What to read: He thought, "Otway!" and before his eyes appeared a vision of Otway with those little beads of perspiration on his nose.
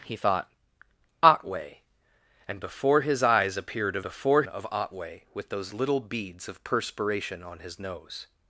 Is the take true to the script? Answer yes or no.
no